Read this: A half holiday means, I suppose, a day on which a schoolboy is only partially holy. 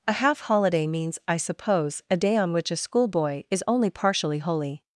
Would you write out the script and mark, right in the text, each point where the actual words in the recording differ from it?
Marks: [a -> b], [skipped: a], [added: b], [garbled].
A half holiday means, I suppose, a day on which a schoolboy is only partially holy.